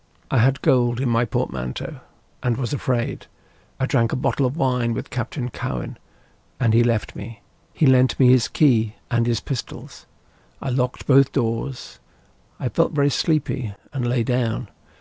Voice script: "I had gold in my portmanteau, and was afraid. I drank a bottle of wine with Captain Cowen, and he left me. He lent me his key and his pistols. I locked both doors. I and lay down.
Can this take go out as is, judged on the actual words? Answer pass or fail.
fail